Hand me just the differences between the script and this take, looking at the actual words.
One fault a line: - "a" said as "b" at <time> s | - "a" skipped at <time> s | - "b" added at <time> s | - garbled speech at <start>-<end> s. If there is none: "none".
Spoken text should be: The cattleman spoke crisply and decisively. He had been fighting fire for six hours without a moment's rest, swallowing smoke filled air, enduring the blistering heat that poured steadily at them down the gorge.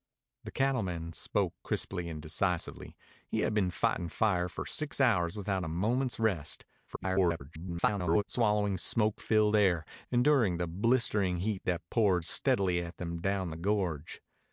- garbled speech at 6.9-8.2 s